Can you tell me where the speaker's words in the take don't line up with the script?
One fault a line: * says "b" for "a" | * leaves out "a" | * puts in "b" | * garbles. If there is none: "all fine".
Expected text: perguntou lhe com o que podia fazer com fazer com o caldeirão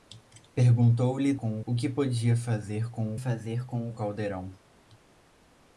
all fine